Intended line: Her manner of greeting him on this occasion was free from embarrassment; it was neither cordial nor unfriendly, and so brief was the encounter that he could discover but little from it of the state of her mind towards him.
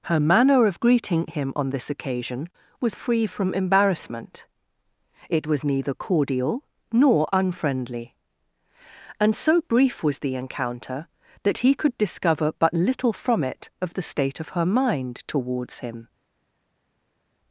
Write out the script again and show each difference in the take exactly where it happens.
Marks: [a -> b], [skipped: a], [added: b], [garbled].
Her manner of greeting him on this occasion was free from embarrassment; it was neither cordial nor unfriendly, and so brief was the encounter that he could discover but little from it of the state of her mind towards him.